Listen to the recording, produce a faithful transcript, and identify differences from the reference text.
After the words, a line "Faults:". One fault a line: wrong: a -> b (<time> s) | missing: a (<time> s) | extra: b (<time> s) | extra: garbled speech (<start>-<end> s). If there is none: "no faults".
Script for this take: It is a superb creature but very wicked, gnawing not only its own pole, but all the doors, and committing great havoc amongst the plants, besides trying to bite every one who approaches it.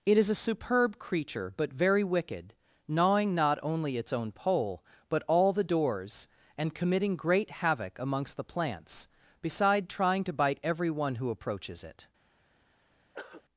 It is a superb creature but very wicked, gnawing not only its own pole, but all the doors, and committing great havoc amongst the plants, beside trying to bite every one who approaches it.
Faults:
wrong: besides -> beside (9.4 s)